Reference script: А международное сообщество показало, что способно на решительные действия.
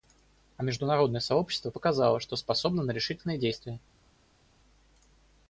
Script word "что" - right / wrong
right